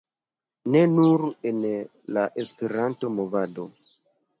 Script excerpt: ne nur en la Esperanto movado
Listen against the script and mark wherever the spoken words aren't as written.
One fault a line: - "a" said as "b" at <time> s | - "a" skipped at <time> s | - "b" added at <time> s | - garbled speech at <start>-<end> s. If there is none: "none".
none